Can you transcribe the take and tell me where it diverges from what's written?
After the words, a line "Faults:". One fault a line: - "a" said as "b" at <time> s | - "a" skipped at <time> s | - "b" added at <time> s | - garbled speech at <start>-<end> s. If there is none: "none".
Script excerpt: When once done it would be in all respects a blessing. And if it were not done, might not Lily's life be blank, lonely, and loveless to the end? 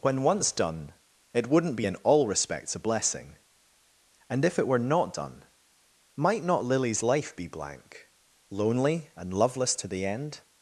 When once done it wouldn't be in all respects a blessing. And if it were not done, might not Lily's life be blank, lonely, and loveless to the end?
Faults:
- "would" said as "wouldn't" at 1.5 s